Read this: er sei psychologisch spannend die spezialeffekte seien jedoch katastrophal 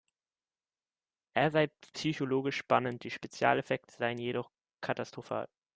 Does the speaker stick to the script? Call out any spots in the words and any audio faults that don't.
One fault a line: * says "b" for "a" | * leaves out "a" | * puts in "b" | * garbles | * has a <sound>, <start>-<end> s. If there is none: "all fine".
all fine